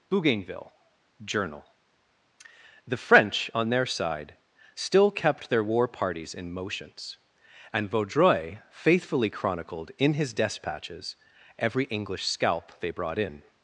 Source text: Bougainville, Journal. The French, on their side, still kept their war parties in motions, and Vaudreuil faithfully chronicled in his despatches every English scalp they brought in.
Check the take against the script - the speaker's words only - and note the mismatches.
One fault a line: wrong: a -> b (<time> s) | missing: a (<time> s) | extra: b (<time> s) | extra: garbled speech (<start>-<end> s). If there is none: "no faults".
no faults